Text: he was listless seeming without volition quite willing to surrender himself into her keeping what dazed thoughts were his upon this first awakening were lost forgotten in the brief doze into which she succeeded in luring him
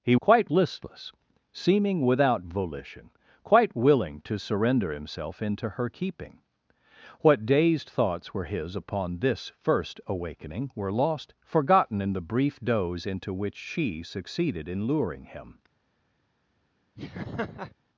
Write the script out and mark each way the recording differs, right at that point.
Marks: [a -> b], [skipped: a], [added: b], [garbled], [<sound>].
he [was -> quite] listless seeming without volition quite willing to surrender himself into her keeping what dazed thoughts were his upon this first awakening were lost forgotten in the brief doze into which she succeeded in luring him [laugh]